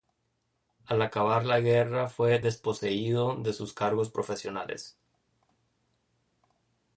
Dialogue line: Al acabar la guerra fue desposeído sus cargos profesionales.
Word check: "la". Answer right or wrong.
right